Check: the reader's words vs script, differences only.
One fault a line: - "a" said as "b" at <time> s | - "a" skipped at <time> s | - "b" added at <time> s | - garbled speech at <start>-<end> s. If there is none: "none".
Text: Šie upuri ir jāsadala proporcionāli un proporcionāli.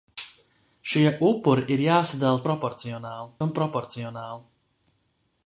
none